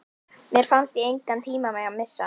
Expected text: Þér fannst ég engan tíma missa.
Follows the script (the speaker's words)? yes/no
no